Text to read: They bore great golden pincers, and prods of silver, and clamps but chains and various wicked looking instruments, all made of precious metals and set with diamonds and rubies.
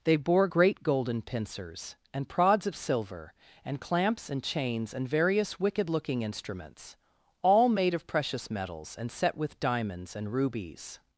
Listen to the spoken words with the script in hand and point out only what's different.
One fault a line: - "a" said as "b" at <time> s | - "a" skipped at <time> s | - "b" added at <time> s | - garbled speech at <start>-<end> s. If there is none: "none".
- "but" said as "and" at 4.3 s